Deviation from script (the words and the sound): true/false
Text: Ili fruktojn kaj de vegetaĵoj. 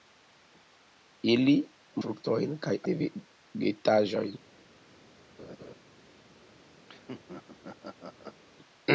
true